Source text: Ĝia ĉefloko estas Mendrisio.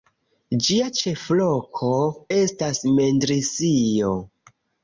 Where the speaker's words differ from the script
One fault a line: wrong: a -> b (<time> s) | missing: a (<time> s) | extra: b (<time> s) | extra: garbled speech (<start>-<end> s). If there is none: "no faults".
no faults